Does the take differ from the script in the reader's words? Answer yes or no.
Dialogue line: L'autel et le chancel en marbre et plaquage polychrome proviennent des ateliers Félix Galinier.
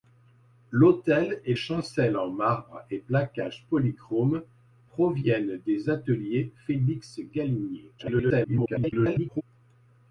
yes